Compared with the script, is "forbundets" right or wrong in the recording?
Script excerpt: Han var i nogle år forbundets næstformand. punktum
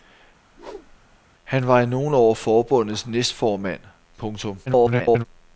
right